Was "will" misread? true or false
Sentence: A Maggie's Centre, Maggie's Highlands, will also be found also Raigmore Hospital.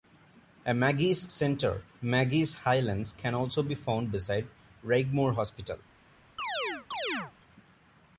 true